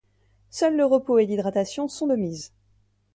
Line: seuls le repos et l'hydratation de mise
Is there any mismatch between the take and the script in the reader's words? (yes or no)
yes